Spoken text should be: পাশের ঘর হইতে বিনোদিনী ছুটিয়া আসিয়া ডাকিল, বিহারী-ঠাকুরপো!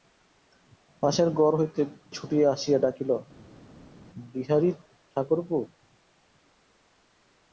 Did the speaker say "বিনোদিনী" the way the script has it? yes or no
no